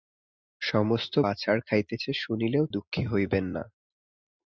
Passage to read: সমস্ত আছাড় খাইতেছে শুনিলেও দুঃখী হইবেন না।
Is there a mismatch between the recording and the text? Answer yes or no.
no